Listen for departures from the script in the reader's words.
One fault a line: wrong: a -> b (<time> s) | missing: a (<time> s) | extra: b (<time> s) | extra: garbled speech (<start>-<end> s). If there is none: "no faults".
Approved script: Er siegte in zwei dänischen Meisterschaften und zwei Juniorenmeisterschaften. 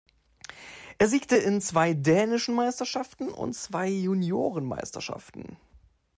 no faults